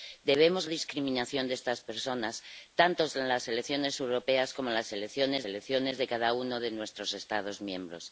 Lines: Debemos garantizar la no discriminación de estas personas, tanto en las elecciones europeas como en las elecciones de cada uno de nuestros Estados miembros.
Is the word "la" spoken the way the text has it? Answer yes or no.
no